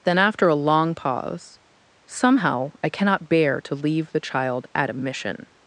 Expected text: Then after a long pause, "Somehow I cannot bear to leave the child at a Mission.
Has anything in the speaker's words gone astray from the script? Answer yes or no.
no